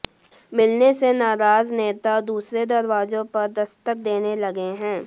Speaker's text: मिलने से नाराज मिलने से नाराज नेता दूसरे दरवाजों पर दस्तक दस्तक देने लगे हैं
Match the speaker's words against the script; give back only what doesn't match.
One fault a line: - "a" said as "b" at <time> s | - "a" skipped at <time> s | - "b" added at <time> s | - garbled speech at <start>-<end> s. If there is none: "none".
- "मिलने से नाराज" skipped at 1.7 s
- "दस्तक" skipped at 4.0 s